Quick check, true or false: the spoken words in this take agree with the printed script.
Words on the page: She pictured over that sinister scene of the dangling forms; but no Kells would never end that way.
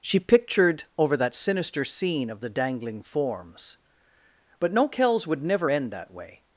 true